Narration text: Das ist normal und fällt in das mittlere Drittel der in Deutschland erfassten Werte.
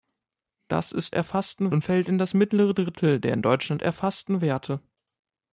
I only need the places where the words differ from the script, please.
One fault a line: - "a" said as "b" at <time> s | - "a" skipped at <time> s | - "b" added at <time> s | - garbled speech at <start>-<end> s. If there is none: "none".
- "normal" said as "erfassten" at 1.1 s